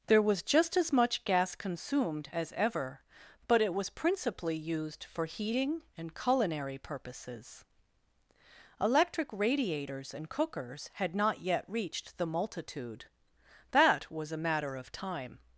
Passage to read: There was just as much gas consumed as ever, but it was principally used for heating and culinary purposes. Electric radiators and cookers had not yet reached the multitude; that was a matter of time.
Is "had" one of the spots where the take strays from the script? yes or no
no